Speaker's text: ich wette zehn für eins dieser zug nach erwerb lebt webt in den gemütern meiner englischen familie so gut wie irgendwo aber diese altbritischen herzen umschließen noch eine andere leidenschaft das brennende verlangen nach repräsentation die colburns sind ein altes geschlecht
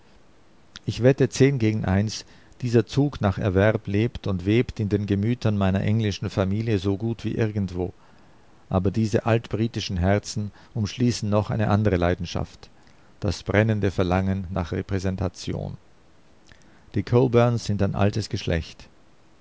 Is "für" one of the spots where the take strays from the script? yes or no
yes